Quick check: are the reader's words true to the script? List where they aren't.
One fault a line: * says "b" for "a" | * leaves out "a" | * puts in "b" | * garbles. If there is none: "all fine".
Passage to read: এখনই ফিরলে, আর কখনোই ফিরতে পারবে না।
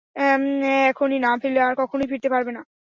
* puts in "না"